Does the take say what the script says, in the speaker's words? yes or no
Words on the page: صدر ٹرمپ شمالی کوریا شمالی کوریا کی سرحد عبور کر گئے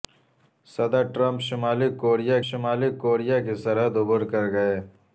yes